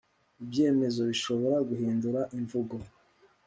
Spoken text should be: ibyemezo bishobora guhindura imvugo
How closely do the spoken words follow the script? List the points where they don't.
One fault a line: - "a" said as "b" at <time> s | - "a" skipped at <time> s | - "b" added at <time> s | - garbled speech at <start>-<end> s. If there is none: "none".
none